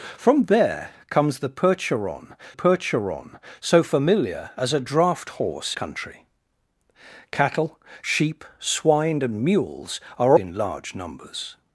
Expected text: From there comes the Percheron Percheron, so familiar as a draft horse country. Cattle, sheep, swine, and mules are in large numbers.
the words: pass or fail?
pass